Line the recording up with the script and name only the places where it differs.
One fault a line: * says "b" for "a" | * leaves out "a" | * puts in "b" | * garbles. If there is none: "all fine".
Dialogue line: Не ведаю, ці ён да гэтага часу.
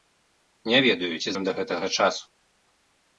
all fine